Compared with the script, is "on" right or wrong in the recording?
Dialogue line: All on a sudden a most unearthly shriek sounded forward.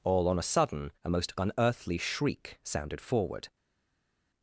right